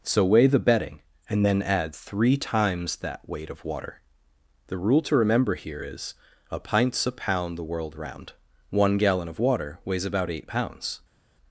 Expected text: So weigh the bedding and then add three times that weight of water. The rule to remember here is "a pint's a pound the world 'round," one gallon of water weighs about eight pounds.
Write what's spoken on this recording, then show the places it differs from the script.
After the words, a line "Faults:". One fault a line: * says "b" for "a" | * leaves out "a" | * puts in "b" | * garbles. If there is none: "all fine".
So weigh the bedding and then add three times that weight of water. The rule to remember here is "a pint's a pound the world 'round," one gallon of water weighs about eight pounds.
Faults:
all fine